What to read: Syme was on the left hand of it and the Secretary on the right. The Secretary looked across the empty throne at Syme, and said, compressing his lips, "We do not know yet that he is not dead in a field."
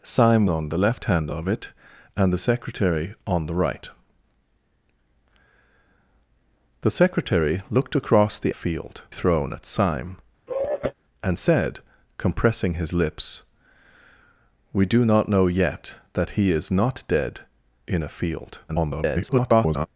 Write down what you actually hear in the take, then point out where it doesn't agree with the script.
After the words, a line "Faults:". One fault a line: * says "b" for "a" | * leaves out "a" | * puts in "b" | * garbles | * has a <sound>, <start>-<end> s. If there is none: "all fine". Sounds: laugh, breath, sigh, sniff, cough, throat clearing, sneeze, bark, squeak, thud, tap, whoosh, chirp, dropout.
Syme on the left hand of it and the Secretary on the right. The Secretary looked across the field throne at Syme, and said, compressing his lips, "We do not know yet that he is not dead in a field." [garbled]
Faults:
* leaves out "was"
* says "field" for "empty"
* has a sigh, 10.5-10.9 s
* garbles